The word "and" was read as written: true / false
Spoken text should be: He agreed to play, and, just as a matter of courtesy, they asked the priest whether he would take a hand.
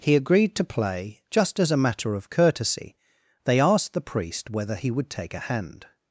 false